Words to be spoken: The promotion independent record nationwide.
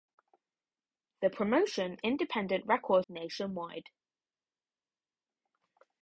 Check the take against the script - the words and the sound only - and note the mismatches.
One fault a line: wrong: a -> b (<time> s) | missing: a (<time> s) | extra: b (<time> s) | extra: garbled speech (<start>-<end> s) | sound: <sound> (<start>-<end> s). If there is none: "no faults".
no faults